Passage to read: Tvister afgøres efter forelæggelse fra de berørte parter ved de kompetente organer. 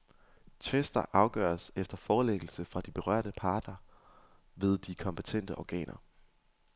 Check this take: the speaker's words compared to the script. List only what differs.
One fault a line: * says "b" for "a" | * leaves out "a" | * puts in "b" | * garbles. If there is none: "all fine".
all fine